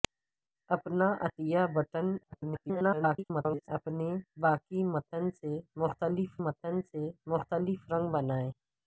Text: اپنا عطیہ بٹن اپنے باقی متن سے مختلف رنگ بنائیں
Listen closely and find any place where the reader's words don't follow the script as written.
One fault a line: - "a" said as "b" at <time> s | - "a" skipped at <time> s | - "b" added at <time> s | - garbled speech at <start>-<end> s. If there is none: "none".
- garbled speech at 2.2-3.7 s
- "متن سے مختلف" added at 6.4 s